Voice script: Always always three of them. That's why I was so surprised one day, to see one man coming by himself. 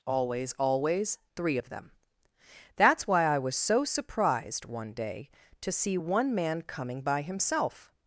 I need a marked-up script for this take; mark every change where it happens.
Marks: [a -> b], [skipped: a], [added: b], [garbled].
Always always three of them. That's why I was so surprised one day, to see one man coming by himself.